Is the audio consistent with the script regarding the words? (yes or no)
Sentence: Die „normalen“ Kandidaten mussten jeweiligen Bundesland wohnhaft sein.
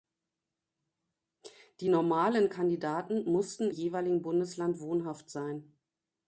yes